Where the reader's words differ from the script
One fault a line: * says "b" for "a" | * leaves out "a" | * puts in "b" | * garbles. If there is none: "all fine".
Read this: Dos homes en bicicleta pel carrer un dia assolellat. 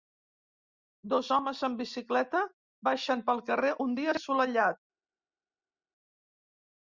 * puts in "baixen"